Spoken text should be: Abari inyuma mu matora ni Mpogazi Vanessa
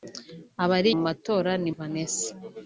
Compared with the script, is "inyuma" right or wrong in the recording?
wrong